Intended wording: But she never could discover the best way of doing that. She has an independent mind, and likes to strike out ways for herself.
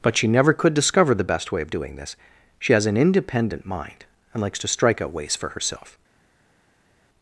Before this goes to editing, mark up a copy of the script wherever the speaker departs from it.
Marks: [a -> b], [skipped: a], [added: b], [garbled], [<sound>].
But she never could discover the best way of doing [that. -> this] She has an independent mind, and likes to strike out ways for herself.